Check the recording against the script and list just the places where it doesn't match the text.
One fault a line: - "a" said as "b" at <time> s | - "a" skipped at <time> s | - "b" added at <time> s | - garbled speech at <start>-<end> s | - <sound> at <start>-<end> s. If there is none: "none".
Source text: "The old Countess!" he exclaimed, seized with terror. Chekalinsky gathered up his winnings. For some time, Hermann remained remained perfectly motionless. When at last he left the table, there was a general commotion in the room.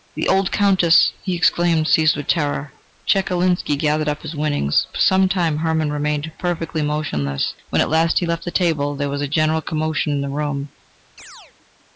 - "remained" skipped at 6.3 s
- chirp at 11.2-11.5 s